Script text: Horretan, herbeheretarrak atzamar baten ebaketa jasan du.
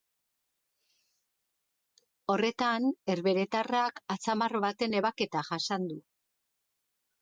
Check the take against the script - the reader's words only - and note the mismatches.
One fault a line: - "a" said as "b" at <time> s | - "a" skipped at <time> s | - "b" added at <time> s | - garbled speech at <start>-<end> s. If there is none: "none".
none